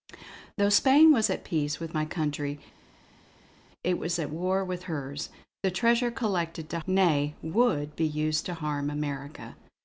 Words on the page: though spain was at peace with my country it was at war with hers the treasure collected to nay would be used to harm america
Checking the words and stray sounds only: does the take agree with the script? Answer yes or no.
yes